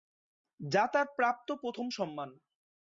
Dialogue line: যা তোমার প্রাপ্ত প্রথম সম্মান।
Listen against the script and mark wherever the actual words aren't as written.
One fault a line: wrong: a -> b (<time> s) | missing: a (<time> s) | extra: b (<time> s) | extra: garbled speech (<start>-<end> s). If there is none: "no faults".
wrong: তোমার -> তার (0.9 s)